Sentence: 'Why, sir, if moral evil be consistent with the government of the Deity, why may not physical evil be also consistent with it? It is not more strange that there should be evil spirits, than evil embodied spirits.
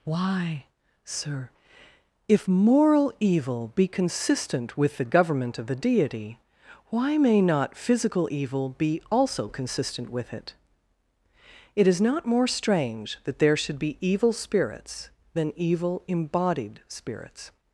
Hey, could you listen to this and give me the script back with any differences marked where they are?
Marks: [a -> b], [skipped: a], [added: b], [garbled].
'Why, sir, if moral evil be consistent with the government of the Deity, why may not physical evil be also consistent with it? It is not more strange that there should be evil spirits, than evil embodied spirits.